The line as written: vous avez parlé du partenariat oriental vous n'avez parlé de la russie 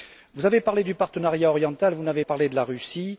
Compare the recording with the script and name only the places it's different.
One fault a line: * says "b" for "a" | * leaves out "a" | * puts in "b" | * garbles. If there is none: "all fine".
all fine